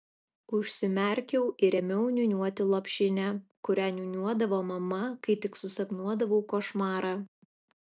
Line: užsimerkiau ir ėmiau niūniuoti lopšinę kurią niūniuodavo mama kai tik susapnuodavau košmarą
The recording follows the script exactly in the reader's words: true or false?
true